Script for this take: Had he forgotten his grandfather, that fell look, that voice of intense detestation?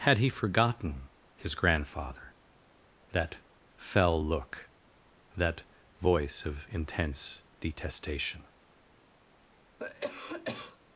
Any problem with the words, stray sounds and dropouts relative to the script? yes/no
yes